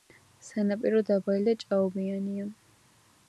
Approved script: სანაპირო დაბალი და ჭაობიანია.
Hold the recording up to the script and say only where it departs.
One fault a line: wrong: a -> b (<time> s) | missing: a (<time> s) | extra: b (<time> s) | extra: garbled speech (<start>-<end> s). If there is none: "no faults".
no faults